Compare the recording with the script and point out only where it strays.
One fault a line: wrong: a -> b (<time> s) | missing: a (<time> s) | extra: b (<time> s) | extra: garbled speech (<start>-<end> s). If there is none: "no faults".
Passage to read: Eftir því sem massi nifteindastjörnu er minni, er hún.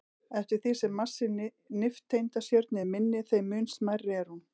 extra: þeim mun smærri (3.3 s)